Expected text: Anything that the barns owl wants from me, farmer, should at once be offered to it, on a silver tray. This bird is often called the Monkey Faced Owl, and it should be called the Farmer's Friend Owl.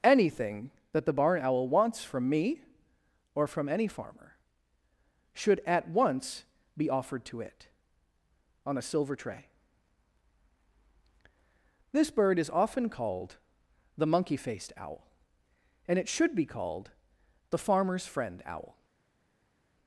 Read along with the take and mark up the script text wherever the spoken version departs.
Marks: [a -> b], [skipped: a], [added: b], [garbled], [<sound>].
Anything that the [barns -> barn] owl wants from me, [added: or from any] farmer, should at once be offered to it, on a silver tray. This bird is often called the Monkey Faced Owl, and it should be called the Farmer's Friend Owl.